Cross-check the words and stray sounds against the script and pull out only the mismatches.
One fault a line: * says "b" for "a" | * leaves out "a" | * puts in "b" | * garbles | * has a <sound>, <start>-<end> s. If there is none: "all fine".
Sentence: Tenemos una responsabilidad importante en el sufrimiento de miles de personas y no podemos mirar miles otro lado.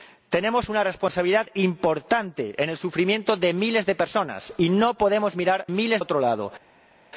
all fine